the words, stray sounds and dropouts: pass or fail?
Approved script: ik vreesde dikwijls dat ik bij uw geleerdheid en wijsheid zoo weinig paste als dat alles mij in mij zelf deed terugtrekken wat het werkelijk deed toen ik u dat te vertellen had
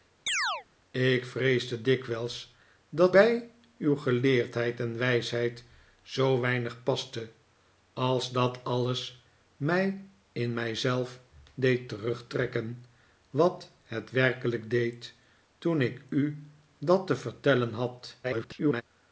fail